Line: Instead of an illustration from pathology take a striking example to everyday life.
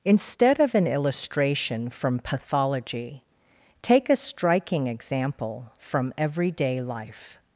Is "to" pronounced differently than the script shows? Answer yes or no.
yes